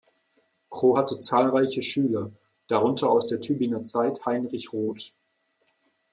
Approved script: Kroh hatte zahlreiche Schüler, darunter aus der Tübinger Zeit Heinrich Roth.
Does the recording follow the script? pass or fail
pass